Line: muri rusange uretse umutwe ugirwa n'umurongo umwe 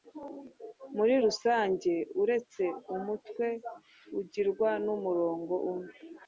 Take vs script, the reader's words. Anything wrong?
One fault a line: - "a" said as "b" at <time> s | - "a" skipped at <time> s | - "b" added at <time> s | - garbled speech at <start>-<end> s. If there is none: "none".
none